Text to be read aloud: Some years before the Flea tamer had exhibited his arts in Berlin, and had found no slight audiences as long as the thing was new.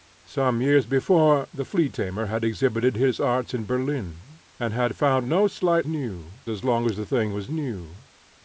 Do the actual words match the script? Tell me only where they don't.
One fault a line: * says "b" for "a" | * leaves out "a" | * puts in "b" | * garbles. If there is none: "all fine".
* says "new" for "audiences"